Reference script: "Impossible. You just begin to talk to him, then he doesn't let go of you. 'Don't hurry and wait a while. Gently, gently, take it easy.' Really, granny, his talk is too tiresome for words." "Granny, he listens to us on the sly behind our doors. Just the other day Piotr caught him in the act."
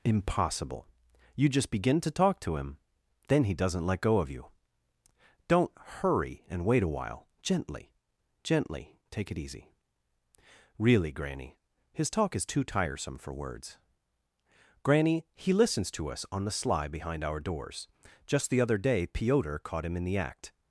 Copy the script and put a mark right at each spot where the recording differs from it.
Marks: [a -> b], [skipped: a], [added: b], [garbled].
"Impossible. You just begin to talk to him, then he doesn't let go of you. 'Don't hurry and wait a while. Gently, gently, take it easy.' Really, granny, his talk is too tiresome for words." "Granny, he listens to us on the sly behind our doors. Just the other day Piotr caught him in the act."